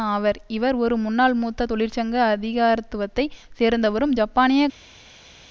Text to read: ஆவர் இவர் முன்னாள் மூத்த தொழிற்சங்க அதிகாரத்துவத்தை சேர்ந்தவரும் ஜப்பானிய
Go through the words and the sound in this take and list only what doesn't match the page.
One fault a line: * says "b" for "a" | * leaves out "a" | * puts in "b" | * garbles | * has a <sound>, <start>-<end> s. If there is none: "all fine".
* puts in "ஒரு"